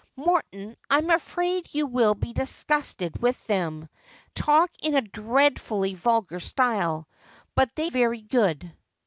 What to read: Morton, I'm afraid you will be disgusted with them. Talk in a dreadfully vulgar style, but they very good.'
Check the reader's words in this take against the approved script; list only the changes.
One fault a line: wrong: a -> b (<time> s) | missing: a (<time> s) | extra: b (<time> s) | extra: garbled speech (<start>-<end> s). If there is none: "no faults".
no faults